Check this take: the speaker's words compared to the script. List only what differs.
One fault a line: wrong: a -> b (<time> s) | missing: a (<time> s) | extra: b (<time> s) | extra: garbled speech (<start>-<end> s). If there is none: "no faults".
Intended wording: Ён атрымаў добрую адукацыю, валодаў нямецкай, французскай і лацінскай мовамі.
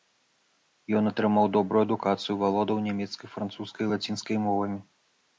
no faults